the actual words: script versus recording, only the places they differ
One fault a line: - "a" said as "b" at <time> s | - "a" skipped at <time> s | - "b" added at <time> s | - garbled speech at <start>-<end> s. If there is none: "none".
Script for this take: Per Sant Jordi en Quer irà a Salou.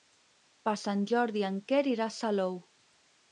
none